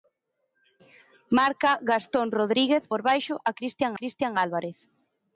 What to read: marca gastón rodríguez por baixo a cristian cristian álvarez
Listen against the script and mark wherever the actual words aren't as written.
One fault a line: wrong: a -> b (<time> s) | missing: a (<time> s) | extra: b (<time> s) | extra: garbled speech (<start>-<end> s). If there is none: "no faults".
no faults